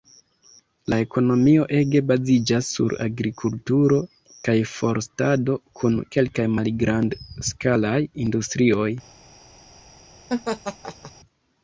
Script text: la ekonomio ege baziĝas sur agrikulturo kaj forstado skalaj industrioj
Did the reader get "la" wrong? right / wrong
right